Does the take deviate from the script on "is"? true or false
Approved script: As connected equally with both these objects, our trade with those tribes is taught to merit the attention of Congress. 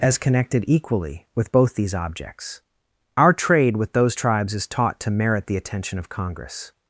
false